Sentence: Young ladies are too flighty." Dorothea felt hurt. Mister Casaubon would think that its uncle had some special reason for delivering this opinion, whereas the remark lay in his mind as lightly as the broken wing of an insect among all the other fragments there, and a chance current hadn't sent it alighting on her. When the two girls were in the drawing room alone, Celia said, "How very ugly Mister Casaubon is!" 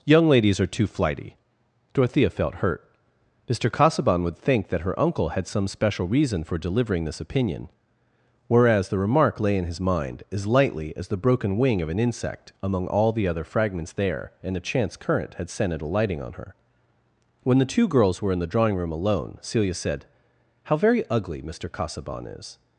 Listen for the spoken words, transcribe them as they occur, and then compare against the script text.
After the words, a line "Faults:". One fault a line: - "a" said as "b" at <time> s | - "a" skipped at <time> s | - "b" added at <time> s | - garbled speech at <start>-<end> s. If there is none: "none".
Young ladies are too flighty." Dorothea felt hurt. Mister Casaubon would think that her uncle had some special reason for delivering this opinion, whereas the remark lay in his mind as lightly as the broken wing of an insect among all the other fragments there, and a chance current had sent it alighting on her. When the two girls were in the drawing room alone, Celia said, "How very ugly Mister Casaubon is!"
Faults:
- "its" said as "her" at 4.8 s
- "hadn't" said as "had" at 15.3 s